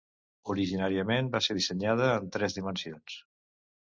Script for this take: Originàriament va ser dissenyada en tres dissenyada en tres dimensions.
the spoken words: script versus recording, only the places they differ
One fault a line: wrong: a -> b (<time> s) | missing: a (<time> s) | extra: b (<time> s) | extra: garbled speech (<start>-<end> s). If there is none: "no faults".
missing: dissenyada en tres (2.5 s)